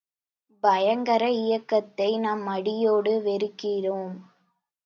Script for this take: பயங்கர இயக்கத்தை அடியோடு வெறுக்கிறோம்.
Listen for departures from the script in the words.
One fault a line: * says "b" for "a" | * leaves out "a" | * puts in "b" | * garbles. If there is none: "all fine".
* puts in "நாம்"